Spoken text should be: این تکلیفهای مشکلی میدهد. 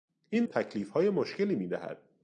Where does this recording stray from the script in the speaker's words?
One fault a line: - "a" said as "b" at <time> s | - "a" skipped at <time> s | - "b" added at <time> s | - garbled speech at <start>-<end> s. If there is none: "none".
none